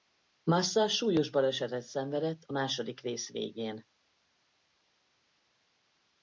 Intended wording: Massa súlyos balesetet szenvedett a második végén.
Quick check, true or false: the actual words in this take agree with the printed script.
false